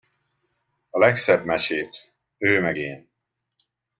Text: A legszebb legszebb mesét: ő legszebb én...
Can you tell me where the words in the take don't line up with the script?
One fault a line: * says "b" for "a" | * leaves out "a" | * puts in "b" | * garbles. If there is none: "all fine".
* leaves out "legszebb"
* says "meg" for "legszebb"